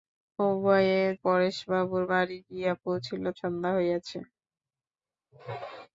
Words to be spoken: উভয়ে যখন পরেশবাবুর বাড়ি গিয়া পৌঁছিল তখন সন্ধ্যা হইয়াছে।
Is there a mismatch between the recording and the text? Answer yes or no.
yes